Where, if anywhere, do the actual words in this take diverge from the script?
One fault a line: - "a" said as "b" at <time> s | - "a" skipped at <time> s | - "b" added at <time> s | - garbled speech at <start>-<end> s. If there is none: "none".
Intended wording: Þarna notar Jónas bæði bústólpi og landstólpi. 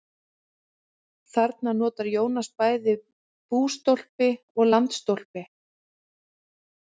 none